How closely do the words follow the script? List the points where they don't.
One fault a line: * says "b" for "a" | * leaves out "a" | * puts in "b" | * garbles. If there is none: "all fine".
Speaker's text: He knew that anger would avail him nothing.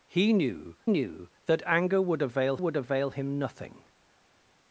* puts in "knew"
* puts in "would avail"